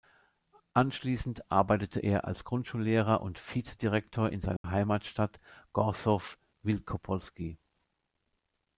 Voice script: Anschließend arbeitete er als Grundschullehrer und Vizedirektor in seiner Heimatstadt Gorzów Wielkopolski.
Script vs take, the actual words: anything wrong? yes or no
no